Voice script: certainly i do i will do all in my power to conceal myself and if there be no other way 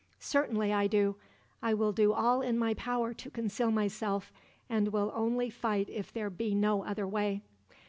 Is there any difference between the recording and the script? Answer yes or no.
yes